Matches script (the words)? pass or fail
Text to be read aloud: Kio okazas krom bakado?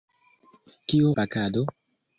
fail